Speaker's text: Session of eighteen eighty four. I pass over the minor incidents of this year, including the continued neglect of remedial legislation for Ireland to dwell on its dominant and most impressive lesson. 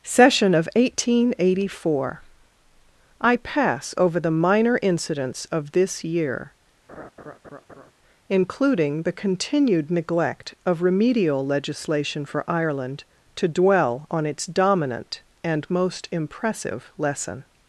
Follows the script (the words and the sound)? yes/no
no